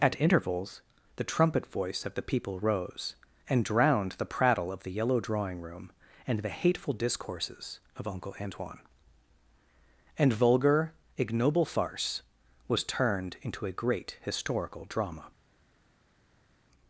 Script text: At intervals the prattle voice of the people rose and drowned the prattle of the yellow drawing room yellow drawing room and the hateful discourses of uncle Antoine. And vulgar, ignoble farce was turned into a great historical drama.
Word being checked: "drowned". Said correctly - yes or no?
yes